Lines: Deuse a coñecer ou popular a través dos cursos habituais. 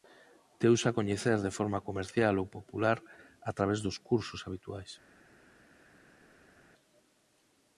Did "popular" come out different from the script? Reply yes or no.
no